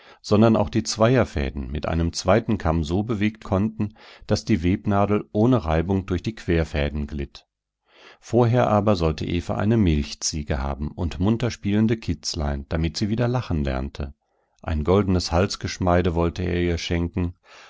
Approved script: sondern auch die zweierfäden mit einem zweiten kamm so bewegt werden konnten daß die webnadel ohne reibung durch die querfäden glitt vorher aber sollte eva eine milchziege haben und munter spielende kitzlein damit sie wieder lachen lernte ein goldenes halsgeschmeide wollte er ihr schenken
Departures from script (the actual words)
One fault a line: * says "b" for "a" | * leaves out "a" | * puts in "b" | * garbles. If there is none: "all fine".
* leaves out "werden"